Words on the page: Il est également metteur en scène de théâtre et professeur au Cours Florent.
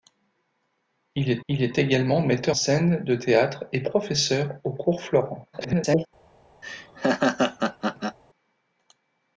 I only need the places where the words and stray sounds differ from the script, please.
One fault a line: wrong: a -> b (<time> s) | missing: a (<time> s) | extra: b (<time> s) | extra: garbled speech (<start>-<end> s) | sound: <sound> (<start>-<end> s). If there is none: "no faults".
extra: il est (1.5 s)
missing: en (2.6 s)
extra: garbled speech (5.5-6.1 s)
sound: laugh (6.6-8.2 s)